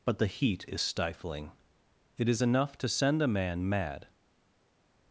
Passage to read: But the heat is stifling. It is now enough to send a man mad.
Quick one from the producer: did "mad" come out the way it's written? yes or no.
yes